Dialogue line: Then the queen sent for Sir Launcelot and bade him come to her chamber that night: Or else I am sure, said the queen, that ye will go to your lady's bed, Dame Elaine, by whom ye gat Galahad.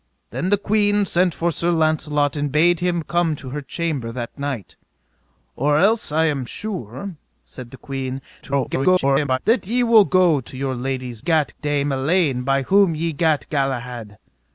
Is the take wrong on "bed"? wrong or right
wrong